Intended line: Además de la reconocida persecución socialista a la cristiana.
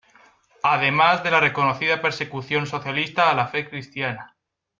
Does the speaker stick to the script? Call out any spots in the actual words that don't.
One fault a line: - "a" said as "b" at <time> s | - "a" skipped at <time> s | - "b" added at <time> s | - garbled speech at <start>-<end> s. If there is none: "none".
- "fe" added at 3.5 s